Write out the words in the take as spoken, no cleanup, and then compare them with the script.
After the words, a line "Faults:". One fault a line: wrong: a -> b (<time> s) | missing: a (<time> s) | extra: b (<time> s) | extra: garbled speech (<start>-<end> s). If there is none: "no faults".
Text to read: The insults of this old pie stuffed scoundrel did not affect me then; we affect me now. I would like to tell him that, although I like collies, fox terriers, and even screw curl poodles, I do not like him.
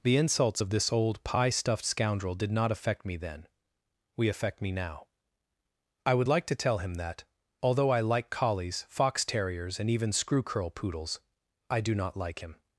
The insults of this old pie stuffed scoundrel did not affect me then; we affect me now. I would like to tell him that, although I like collies, fox terriers, and even screw curl poodles, I do not like him.
Faults:
no faults